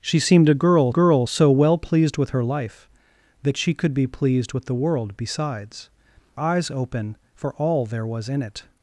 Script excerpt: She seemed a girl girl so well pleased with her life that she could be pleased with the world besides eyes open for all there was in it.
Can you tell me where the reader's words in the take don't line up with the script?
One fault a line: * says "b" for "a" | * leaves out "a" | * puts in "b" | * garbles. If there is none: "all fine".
all fine